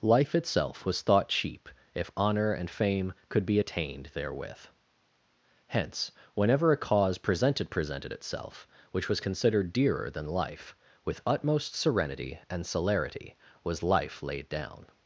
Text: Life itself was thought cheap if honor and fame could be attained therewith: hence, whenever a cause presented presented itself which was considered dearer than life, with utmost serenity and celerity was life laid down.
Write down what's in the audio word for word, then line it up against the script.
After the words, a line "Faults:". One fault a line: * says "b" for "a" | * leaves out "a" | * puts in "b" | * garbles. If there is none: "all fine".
Life itself was thought cheap if honor and fame could be attained therewith: hence, whenever a cause presented presented itself which was considered dearer than life, with utmost serenity and celerity was life laid down.
Faults:
all fine